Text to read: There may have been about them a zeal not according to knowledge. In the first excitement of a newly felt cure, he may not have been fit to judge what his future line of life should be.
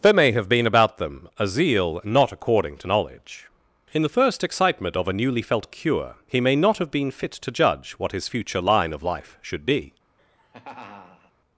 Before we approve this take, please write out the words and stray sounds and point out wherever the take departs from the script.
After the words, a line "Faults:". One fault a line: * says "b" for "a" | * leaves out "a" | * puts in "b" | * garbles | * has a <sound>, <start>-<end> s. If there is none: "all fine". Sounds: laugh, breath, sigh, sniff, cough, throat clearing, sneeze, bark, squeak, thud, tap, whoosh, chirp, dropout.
There may have been about them a zeal not according to knowledge. In the first excitement of a newly felt cure, he may not have been fit to judge what his future line of life should be.
Faults:
* has a laugh, 10.2-11.3 s